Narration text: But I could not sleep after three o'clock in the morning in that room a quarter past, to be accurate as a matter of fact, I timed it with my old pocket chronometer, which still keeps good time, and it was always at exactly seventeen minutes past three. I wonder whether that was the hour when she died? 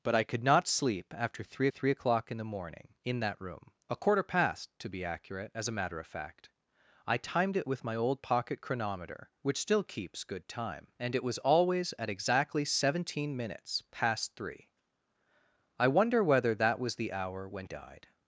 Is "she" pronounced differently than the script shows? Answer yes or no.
yes